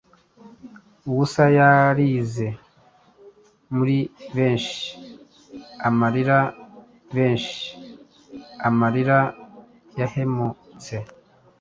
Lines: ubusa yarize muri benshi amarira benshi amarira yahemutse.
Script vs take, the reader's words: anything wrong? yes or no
no